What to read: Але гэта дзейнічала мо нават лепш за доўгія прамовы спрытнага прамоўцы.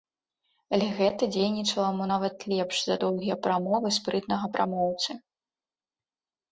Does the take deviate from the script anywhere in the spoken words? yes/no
no